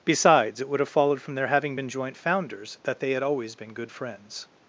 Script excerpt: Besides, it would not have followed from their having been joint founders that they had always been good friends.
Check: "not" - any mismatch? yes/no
yes